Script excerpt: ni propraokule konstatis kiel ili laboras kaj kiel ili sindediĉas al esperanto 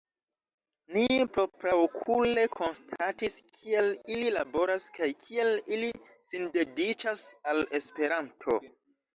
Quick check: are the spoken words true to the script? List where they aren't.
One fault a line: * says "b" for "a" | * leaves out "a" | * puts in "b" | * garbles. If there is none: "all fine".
all fine